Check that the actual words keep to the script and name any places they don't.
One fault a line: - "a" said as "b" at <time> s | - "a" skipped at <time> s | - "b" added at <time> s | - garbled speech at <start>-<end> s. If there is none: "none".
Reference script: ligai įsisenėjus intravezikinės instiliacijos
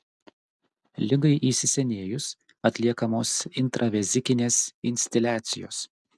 - "atliekamos" added at 2.7 s